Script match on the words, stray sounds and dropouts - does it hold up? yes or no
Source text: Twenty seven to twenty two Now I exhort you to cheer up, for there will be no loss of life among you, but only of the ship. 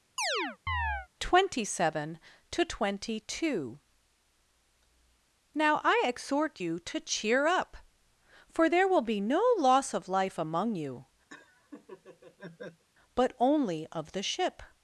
no